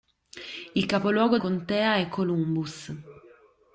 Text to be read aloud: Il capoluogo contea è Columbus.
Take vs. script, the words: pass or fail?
pass